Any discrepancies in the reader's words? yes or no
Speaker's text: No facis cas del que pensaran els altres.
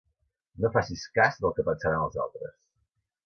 no